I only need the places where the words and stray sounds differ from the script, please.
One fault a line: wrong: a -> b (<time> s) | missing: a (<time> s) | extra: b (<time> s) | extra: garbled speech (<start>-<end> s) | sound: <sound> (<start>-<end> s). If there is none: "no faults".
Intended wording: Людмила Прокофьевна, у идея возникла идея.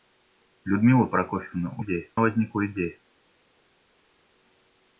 no faults